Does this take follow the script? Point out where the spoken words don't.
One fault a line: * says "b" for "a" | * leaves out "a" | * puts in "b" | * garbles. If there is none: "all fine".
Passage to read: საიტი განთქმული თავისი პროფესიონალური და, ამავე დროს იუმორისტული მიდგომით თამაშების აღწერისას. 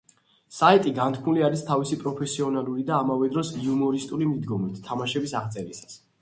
* puts in "არის"